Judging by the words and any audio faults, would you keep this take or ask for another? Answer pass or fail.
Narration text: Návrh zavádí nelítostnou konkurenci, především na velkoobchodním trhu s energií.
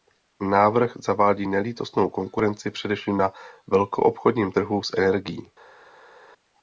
pass